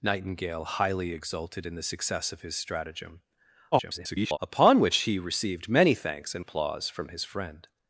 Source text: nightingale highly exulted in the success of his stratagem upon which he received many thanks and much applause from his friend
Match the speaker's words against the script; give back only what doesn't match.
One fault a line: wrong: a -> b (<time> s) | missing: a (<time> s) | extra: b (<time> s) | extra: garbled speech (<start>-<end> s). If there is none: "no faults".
extra: garbled speech (3.7-4.4 s)
missing: much (6.4 s)